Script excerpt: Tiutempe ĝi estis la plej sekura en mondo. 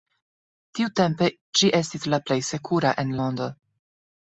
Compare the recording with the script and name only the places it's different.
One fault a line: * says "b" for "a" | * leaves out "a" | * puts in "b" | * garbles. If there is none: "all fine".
all fine